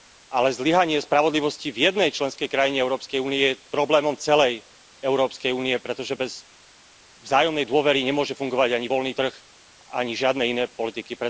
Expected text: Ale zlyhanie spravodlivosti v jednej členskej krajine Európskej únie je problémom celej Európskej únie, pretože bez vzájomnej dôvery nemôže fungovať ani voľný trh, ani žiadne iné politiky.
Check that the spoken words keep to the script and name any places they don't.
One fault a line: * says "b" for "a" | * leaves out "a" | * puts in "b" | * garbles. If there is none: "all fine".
all fine